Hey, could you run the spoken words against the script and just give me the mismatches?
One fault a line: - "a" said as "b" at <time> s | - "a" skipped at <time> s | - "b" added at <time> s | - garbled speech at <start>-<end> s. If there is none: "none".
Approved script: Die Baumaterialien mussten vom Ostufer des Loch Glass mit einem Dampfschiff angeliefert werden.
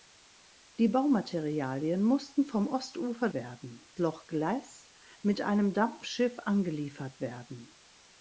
- "des" said as "werden" at 3.3 s